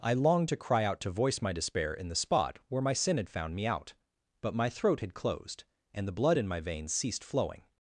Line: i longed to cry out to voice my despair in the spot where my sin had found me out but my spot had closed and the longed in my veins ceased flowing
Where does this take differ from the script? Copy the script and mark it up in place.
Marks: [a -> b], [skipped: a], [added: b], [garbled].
i longed to cry out to voice my despair in the spot where my sin had found me out but my [spot -> throat] had closed and the [longed -> blood] in my veins ceased flowing